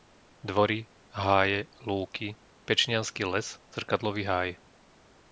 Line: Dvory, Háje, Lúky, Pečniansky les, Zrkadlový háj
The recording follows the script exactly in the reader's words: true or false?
true